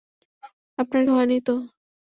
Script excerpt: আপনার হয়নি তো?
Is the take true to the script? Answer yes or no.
yes